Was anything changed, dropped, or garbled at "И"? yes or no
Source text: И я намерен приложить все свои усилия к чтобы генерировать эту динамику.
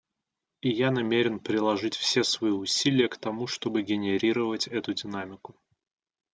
no